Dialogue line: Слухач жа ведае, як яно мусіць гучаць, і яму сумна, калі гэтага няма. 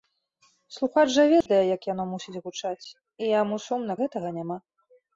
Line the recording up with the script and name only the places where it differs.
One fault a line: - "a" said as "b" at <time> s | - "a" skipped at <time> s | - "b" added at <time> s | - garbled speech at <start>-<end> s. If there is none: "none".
- "калі" skipped at 3.9 s